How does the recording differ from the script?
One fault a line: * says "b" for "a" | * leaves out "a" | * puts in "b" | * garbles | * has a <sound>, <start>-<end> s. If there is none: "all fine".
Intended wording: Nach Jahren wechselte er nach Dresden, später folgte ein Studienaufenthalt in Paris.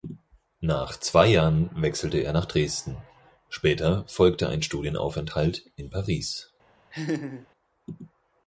* puts in "zwei"
* has a laugh, 6.9-7.5 s